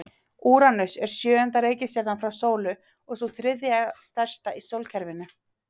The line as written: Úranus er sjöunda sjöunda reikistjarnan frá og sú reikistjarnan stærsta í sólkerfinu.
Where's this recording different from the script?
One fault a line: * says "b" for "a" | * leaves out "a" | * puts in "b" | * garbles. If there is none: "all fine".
* leaves out "sjöunda"
* puts in "sólu"
* says "þriðja" for "reikistjarnan"